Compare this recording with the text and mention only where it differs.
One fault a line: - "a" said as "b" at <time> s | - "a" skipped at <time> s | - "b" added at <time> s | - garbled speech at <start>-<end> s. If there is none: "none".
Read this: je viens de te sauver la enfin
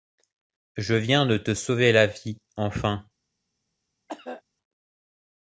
- "vie" added at 2.1 s